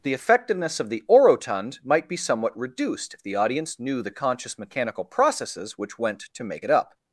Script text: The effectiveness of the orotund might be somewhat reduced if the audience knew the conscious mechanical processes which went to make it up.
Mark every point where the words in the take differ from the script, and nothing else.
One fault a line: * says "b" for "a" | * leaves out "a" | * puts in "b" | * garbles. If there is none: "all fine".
all fine